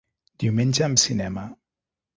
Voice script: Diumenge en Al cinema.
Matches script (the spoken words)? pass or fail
pass